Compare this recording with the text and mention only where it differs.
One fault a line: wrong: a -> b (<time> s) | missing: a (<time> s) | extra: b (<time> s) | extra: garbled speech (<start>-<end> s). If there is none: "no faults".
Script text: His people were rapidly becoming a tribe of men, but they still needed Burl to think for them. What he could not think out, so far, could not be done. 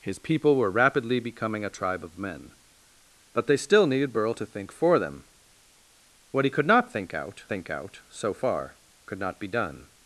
extra: think out (7.5 s)